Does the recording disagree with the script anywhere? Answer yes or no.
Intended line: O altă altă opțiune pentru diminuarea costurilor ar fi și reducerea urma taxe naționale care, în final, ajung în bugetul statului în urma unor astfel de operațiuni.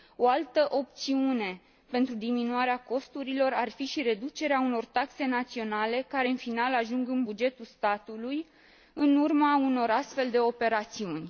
yes